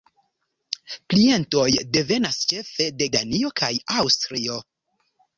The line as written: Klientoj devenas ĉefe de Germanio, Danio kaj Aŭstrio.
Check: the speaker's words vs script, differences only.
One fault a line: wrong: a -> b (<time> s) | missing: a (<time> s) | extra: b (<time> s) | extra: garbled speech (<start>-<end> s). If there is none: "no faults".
missing: Germanio (3.1 s)